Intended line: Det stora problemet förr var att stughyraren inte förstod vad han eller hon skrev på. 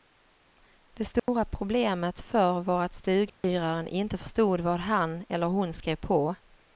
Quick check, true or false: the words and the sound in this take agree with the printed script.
false